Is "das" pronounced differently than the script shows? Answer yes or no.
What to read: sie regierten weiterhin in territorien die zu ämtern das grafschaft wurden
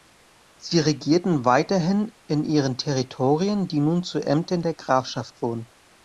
yes